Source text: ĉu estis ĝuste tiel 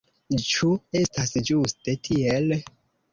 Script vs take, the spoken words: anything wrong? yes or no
yes